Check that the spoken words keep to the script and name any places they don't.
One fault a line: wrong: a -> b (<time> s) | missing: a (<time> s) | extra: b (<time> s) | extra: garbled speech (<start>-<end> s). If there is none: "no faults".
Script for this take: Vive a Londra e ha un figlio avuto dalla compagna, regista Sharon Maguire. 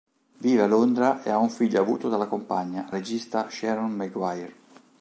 no faults